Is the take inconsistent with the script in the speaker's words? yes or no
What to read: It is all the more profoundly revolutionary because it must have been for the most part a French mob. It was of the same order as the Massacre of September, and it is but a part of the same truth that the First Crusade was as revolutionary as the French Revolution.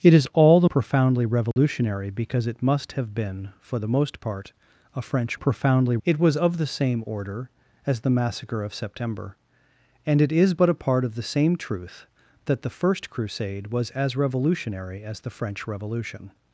yes